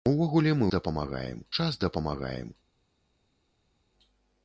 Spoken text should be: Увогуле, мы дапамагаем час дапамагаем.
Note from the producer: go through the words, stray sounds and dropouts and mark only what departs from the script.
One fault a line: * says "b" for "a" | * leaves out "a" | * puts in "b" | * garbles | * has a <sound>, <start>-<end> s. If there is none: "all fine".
all fine